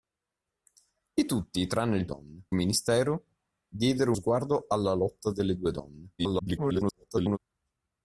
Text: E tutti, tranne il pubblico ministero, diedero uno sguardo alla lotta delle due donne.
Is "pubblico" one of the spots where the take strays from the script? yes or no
yes